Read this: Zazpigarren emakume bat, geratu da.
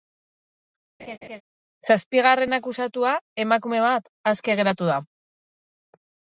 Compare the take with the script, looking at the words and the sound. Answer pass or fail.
fail